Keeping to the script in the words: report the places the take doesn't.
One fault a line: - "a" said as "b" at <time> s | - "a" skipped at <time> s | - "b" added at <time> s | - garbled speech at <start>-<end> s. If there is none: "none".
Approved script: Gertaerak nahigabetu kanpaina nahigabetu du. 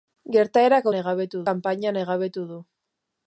none